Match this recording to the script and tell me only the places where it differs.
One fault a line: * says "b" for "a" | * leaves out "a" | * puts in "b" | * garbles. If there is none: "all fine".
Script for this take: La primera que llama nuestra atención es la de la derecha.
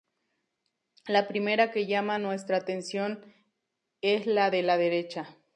all fine